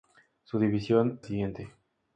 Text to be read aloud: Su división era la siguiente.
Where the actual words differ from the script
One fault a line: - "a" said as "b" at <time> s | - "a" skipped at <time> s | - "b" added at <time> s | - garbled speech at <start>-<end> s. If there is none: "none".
- "era la" skipped at 1.2 s